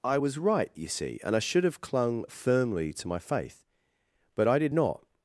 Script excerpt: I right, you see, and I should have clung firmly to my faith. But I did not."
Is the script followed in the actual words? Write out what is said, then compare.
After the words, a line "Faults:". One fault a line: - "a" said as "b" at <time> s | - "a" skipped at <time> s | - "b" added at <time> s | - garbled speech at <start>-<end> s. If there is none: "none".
I was right, you see, and I should have clung firmly to my faith. But I did not."
Faults:
- "was" added at 0.1 s